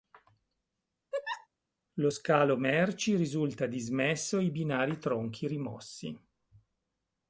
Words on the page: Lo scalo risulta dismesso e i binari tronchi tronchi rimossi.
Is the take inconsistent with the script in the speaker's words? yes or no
yes